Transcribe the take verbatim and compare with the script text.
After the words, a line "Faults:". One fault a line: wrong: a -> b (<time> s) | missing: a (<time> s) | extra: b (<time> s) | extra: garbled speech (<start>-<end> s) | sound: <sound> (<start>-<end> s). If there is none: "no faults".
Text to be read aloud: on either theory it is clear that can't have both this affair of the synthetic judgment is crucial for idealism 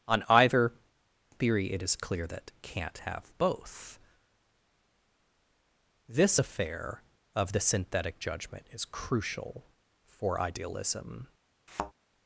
on either theory it is clear that can't have both this affair of the synthetic judgment is crucial for idealism
Faults:
sound: thud (11.7-11.9 s)